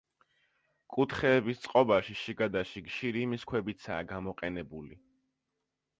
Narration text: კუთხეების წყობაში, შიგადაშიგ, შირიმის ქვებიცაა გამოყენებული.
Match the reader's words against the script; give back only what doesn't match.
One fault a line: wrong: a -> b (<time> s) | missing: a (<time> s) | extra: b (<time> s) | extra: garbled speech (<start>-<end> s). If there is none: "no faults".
no faults